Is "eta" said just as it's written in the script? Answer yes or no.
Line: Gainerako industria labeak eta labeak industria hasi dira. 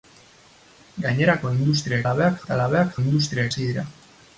yes